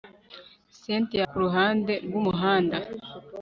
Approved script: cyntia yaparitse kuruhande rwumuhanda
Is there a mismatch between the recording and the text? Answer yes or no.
yes